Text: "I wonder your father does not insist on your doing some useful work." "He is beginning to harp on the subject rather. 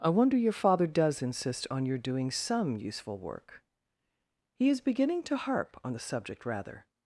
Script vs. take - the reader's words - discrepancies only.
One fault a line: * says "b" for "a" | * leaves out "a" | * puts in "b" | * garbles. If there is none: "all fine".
* leaves out "not"